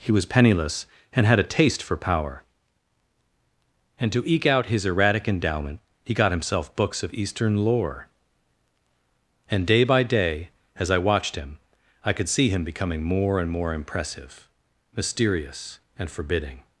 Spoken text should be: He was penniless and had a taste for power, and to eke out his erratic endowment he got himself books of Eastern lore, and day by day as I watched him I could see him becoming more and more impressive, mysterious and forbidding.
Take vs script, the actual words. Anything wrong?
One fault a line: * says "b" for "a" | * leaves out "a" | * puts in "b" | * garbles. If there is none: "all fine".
all fine